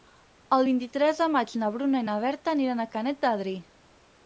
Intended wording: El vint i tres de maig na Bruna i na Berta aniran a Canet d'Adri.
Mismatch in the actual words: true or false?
false